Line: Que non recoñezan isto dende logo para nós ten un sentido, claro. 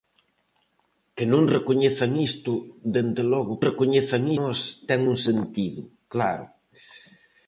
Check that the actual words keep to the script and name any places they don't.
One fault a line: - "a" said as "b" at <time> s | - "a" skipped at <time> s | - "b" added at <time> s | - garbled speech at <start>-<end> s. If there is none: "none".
- "para" said as "recoñezan" at 3.7 s